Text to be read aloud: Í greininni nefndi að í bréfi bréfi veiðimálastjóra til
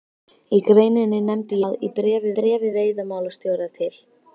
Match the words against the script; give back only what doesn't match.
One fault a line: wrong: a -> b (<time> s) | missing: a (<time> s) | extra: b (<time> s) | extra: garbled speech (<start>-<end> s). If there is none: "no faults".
no faults